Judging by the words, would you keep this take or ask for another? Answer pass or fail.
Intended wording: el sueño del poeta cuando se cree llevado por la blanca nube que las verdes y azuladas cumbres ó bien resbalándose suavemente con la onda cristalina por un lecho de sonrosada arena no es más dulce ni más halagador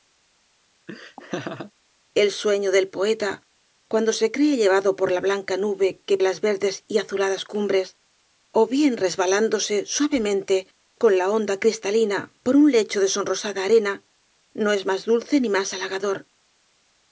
pass